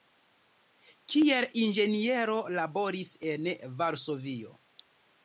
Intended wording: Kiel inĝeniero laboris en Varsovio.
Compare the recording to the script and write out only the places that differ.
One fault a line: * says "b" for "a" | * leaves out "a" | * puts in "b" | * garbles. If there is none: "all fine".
all fine